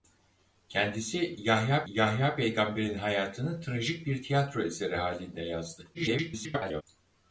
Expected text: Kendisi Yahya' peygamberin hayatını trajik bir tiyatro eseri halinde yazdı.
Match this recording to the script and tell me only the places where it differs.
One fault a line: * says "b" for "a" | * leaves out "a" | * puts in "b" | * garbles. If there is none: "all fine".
* puts in "Yahya"
* garbles